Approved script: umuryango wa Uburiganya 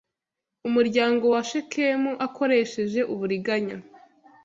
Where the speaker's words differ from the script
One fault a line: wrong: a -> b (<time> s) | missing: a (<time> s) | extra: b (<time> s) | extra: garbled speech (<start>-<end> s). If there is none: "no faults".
extra: Shekemu akoresheje (1.5 s)